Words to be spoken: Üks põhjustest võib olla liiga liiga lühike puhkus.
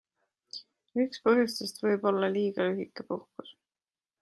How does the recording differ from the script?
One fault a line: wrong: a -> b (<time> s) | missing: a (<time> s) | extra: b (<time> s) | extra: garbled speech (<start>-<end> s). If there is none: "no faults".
missing: liiga (2.7 s)